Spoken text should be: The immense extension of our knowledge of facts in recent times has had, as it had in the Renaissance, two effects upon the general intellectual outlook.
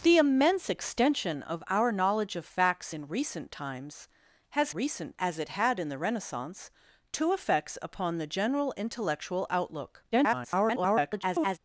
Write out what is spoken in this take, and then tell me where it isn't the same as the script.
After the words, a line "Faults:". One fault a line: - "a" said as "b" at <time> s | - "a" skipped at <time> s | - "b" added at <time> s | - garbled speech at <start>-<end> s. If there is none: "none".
The immense extension of our knowledge of facts in recent times has recent, as it had in the Renaissance, two effects upon the general intellectual outlook. [garbled]
Faults:
- "had" said as "recent" at 4.7 s
- garbled speech at 10.1-11.6 s